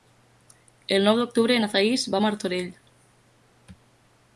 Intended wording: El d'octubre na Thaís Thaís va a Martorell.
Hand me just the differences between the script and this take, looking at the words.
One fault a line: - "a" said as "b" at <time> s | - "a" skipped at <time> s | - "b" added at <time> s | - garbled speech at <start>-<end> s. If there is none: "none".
- "nou" added at 1.1 s
- "Thaís" skipped at 2.1 s